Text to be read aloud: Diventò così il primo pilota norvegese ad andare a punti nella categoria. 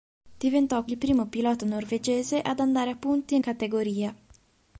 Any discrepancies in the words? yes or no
yes